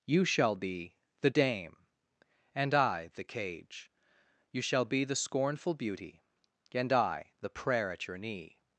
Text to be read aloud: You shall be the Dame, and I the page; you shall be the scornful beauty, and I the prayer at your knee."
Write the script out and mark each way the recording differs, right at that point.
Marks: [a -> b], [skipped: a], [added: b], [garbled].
You shall be the Dame, and I the [page; -> cage] you shall be the scornful beauty, and I the prayer at your knee."